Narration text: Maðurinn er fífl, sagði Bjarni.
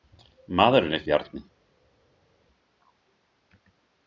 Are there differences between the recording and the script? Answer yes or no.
yes